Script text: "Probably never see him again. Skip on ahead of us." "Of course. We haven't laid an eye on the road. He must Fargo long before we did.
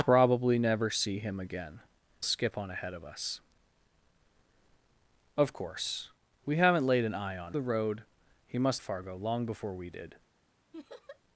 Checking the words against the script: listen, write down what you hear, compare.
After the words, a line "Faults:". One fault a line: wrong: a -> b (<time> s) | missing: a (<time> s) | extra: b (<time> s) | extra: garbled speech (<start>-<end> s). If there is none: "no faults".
"Probably never see him again. Skip on ahead of us." "Of course. We haven't laid an eye on the road. He must Fargo long before we did.
Faults:
no faults